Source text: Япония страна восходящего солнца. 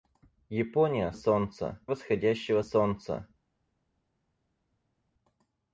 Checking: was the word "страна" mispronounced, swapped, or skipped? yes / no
yes